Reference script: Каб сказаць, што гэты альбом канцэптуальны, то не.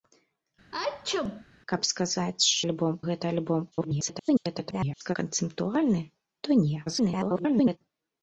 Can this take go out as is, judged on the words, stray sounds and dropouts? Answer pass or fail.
fail